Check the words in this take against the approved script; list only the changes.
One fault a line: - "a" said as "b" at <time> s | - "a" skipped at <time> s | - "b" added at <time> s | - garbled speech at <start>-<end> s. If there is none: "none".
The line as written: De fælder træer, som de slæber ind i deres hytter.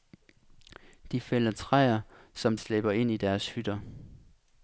- "de" skipped at 2.6 s